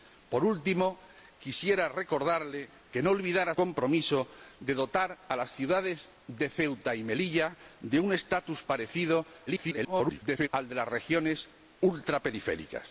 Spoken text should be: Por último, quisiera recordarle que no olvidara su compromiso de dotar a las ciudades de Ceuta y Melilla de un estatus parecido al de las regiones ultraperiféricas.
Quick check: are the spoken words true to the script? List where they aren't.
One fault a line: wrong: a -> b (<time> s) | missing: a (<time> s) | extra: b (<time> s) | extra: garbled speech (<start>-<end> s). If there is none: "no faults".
missing: su (3.5 s)
extra: garbled speech (9.5-10.5 s)